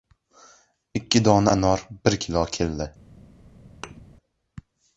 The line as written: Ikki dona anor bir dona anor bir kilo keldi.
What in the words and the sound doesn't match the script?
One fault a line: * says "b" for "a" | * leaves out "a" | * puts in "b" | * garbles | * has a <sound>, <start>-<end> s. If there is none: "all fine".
* leaves out "dona anor bir"
* has a thud, 3.8-4.0 s